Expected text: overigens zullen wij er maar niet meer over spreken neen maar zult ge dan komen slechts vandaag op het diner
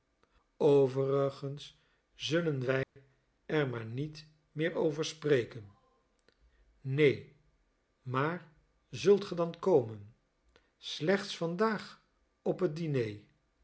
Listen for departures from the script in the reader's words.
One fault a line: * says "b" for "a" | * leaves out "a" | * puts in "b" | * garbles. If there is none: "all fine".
all fine